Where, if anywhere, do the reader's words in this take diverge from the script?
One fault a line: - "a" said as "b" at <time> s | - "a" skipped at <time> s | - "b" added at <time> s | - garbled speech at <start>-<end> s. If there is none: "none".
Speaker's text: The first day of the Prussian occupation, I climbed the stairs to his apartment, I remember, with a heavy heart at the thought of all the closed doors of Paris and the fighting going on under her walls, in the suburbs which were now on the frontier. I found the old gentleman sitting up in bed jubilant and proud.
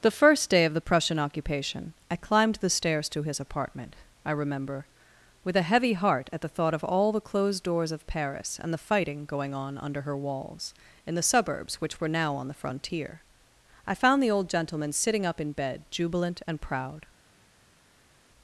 none